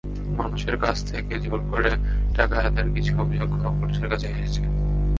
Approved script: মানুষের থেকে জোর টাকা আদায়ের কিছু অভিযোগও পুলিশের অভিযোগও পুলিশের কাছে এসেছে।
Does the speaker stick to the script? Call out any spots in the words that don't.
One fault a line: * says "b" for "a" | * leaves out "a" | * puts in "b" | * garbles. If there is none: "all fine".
* puts in "কাছ"
* puts in "করে"
* leaves out "অভিযোগও পুলিশের"